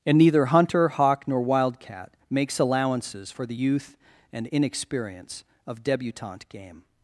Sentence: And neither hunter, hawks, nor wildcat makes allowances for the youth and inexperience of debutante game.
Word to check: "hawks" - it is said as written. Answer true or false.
false